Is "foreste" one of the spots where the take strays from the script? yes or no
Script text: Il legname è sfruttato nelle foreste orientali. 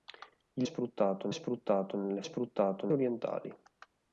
yes